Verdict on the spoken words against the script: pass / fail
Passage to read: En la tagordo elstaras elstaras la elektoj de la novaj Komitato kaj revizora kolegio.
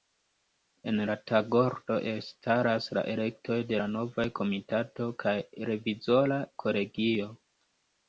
fail